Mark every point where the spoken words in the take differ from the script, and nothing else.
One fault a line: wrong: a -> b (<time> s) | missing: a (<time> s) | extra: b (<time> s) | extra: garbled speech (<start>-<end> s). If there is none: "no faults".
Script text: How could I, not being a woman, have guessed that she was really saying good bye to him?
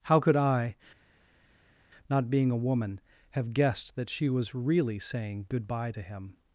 no faults